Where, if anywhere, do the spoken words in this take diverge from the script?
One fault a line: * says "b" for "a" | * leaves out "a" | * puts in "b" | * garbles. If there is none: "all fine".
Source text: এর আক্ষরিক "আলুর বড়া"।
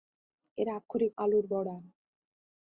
all fine